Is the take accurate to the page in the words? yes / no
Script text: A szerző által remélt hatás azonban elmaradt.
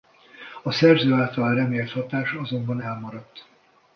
yes